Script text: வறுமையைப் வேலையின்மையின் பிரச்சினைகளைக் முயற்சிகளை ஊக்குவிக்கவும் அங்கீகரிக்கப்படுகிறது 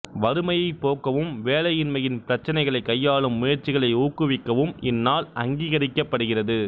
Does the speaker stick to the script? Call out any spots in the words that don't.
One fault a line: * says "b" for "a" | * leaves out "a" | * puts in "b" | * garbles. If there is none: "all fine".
* puts in "போக்கவும்"
* puts in "கையாளும்"
* puts in "இந்நாள்"